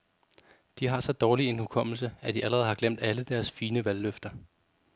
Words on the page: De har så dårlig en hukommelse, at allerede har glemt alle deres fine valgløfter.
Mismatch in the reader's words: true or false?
true